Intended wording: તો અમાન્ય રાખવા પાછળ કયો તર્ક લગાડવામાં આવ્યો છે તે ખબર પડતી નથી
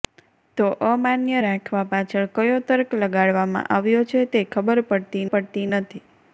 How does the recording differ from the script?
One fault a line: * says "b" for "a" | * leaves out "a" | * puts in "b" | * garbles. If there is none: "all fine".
* puts in "પડતી"